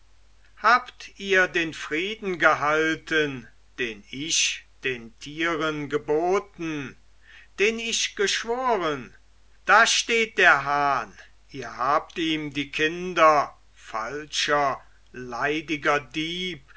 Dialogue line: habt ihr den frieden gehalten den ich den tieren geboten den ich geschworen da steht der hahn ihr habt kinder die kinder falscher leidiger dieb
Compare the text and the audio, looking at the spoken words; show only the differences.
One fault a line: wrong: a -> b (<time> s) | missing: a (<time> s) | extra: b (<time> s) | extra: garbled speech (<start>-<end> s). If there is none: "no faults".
wrong: kinder -> ihm (12.2 s)